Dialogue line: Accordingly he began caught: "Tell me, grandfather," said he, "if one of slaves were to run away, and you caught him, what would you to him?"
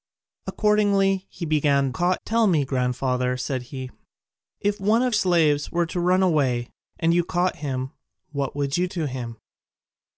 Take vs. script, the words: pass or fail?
pass